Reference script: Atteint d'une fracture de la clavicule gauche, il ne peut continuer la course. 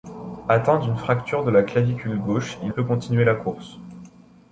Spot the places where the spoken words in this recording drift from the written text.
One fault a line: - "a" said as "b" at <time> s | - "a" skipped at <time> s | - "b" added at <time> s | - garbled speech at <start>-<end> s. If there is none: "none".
- "ne" skipped at 2.7 s